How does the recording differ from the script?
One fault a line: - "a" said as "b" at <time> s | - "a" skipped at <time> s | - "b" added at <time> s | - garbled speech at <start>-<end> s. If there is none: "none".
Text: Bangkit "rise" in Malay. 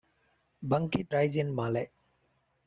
none